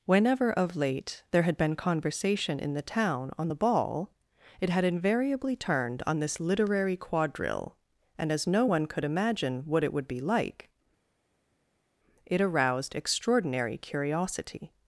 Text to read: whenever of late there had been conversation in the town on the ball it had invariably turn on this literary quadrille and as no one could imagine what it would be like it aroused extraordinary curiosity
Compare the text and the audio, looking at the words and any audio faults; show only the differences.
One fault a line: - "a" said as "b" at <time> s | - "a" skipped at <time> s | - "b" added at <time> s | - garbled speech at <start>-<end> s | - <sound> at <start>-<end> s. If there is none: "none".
- "turn" said as "turned" at 5.6 s